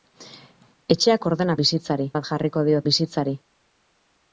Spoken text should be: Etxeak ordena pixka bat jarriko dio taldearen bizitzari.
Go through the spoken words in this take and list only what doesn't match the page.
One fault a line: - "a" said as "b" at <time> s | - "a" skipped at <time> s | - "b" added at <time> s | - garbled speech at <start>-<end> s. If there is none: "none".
- "pixka" said as "bizitzari" at 1.6 s
- "taldearen" skipped at 2.8 s